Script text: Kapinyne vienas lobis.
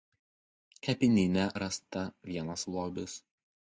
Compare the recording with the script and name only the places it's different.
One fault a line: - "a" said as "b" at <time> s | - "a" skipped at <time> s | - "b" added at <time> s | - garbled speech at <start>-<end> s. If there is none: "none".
- "rasta" added at 1.6 s